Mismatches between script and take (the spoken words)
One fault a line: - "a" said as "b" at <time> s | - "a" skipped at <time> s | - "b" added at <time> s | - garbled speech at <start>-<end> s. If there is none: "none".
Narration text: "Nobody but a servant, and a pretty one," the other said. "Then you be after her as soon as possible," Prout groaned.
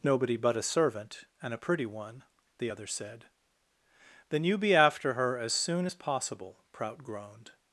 none